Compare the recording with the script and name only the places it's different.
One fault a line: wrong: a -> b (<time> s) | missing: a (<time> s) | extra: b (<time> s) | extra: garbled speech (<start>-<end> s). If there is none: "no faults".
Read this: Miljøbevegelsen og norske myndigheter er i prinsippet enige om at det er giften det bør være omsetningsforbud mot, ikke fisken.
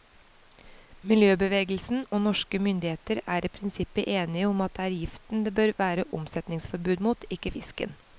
no faults